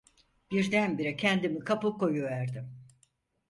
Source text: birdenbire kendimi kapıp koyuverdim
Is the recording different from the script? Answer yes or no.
no